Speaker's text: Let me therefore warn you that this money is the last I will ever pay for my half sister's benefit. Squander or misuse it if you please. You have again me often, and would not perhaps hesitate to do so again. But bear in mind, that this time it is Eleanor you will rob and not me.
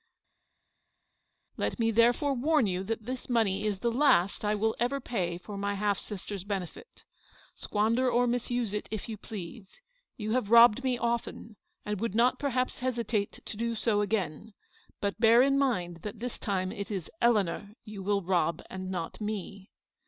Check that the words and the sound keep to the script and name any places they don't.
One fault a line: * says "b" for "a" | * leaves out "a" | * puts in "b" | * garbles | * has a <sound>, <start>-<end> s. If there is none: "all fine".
* says "robbed" for "again"